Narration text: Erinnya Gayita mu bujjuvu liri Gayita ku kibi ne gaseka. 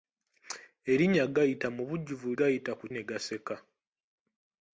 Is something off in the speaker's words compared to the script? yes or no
yes